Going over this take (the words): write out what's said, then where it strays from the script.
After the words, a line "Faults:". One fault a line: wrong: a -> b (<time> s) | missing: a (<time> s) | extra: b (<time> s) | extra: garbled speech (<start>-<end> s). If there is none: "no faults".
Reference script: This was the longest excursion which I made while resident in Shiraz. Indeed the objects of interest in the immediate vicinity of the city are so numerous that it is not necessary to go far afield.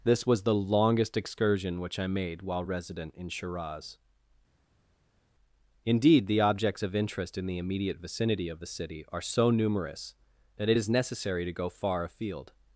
This was the longest excursion which I made while resident in Shiraz. Indeed the objects of interest in the immediate vicinity of the city are so numerous that it is necessary to go far afield.
Faults:
missing: not (10.9 s)